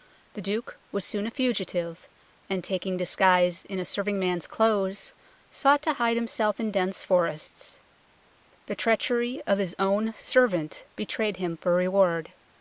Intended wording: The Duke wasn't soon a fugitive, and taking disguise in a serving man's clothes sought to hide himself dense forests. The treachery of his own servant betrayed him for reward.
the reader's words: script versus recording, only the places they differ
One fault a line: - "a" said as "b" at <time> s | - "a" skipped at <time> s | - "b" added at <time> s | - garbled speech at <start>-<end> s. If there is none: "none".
- "wasn't" said as "was" at 0.9 s
- "in" added at 6.6 s